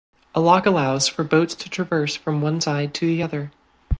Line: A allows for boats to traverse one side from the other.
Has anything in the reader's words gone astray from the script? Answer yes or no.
yes